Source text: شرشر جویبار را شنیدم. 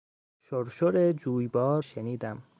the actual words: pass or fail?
fail